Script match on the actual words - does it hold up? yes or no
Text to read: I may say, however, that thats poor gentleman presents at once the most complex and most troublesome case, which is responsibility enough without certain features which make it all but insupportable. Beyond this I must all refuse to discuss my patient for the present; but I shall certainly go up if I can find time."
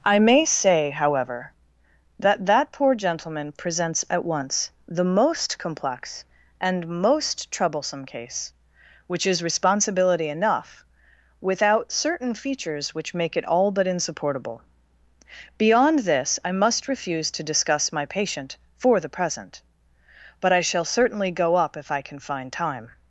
no